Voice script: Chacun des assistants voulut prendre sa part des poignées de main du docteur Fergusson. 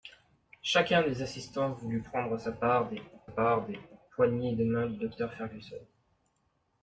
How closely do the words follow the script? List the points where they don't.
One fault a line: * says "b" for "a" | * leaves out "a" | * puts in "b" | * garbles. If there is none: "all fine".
* puts in "part des"